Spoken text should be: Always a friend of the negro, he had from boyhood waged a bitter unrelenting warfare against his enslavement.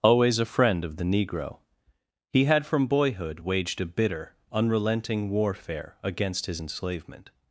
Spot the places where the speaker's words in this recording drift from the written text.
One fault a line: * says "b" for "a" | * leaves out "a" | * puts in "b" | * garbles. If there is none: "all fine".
all fine